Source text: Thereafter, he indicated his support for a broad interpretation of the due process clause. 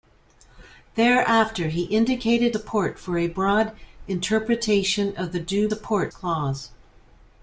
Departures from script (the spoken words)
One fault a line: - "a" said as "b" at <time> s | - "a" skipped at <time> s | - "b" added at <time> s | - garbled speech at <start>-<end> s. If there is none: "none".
- "his" skipped at 2.5 s
- "process" said as "support" at 5.7 s